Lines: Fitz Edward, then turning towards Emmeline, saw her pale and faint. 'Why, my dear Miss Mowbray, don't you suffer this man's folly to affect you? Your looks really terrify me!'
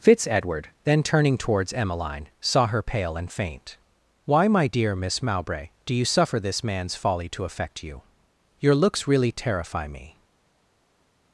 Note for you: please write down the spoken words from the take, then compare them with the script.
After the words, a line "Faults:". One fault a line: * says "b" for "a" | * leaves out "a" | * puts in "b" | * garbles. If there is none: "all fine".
Fitz Edward, then turning towards Emmeline, saw her pale and faint. 'Why, my dear Miss Mowbray, do you suffer this man's folly to affect you? Your looks really terrify me!'
Faults:
* says "do" for "don't"